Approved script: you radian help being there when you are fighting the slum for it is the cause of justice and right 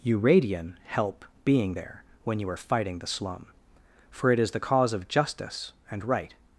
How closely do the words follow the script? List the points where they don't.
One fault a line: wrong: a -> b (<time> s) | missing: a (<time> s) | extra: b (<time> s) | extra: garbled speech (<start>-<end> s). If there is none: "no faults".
no faults